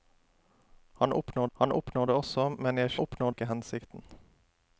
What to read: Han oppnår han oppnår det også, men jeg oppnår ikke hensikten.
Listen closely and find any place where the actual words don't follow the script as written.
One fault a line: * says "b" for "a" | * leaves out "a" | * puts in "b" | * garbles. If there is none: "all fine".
all fine